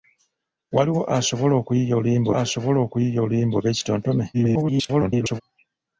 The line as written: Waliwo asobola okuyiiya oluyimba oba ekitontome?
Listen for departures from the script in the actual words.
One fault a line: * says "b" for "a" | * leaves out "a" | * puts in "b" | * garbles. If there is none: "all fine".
* puts in "asobola okuyiiya oluyimba"
* garbles